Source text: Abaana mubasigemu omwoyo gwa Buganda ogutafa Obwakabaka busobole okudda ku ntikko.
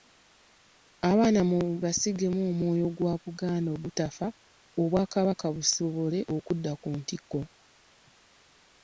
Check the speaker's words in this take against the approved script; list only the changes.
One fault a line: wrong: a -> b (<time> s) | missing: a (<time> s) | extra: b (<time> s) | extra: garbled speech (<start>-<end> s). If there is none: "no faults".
no faults